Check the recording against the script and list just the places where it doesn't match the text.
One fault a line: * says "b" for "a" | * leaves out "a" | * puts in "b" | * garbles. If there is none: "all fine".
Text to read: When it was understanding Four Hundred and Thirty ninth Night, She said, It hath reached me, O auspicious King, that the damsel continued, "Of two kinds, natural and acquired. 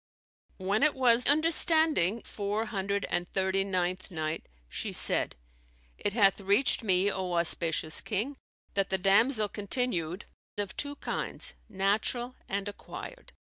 all fine